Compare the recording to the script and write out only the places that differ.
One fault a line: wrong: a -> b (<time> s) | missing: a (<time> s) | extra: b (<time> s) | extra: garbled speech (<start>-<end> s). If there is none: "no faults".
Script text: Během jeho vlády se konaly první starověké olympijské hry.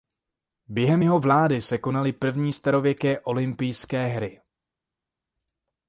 no faults